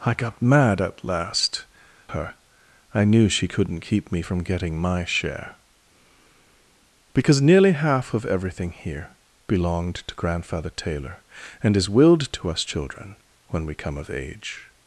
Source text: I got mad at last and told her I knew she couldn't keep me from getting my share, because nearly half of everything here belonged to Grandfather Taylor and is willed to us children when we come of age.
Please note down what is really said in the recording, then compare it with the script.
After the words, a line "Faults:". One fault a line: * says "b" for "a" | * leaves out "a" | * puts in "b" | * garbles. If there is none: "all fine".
I got mad at last her I knew she couldn't keep me from getting my share, because nearly half of everything here belonged to Grandfather Taylor and is willed to us children when we come of age.
Faults:
* leaves out "and told"